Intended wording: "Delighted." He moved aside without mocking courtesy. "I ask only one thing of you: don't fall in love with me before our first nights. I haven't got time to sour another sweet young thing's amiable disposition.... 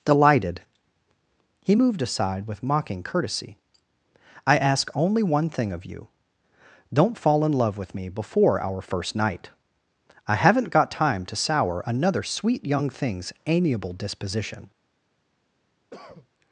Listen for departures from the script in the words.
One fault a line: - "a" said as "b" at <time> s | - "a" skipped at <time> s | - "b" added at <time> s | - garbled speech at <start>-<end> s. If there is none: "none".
- "without" said as "with" at 2.5 s
- "nights" said as "night" at 9.1 s